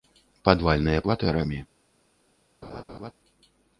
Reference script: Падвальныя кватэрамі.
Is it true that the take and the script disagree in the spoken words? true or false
false